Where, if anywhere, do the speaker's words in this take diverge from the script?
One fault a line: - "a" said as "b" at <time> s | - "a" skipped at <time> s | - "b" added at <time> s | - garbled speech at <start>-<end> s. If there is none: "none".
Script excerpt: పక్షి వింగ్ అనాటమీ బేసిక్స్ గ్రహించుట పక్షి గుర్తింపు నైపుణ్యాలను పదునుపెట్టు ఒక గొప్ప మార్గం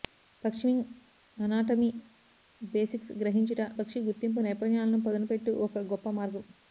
none